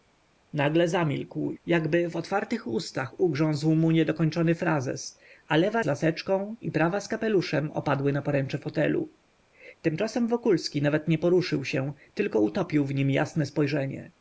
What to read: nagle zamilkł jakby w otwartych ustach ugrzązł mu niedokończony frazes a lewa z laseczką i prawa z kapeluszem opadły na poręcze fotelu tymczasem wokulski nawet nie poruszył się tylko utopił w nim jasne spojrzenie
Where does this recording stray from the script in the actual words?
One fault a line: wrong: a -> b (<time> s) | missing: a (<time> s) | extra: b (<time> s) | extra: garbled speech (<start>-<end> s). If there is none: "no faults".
no faults